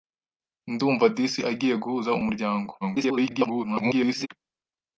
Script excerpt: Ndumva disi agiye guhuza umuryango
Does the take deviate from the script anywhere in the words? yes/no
yes